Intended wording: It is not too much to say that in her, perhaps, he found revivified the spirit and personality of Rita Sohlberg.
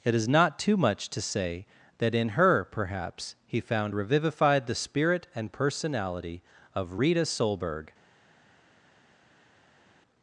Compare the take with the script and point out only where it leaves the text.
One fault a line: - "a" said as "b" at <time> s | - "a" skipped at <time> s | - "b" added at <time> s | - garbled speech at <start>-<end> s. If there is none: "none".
none